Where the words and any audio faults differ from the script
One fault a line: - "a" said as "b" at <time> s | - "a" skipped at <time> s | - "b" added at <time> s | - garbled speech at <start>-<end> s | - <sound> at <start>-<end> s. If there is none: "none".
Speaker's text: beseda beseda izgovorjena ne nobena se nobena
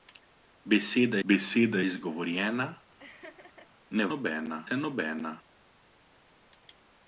- laugh at 3.0-3.7 s